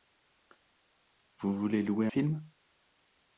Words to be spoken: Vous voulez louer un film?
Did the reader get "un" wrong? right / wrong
wrong